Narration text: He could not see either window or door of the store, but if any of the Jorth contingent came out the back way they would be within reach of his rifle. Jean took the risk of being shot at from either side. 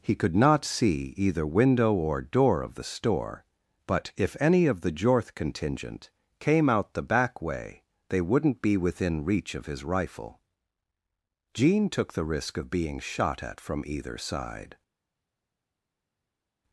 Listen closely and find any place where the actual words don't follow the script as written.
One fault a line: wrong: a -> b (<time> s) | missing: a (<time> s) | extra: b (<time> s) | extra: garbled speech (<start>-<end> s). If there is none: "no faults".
wrong: would -> wouldn't (8.2 s)